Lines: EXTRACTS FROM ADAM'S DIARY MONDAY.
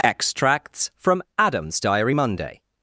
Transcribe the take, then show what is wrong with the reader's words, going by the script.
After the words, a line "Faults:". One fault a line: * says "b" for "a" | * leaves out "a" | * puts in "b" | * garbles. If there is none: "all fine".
EXTRACTS FROM ADAM'S DIARY MONDAY.
Faults:
all fine